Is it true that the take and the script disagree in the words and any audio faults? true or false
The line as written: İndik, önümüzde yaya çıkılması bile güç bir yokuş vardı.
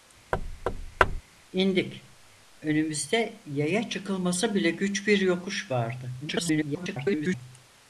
true